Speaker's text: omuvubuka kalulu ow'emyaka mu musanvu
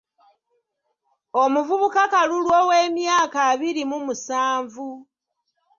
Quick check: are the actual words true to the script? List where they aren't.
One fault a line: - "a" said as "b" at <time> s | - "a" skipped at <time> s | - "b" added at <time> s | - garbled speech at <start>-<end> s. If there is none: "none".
- "abiri" added at 3.5 s